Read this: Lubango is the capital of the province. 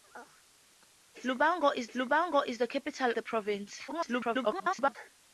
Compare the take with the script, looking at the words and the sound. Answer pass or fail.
fail